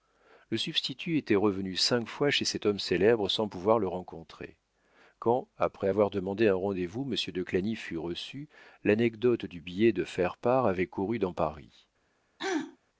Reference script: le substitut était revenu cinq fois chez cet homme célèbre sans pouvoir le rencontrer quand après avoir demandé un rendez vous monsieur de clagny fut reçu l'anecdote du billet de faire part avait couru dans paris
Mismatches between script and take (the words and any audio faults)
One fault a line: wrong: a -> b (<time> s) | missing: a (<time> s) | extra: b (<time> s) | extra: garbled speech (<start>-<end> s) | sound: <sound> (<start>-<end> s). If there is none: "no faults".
sound: throat clearing (12.4-12.8 s)